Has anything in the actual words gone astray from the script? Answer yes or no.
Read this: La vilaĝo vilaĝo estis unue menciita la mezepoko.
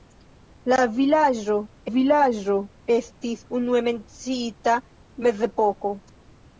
no